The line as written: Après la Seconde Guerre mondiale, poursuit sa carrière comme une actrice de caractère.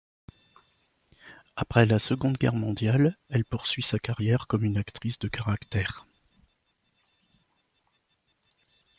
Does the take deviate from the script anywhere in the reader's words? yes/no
yes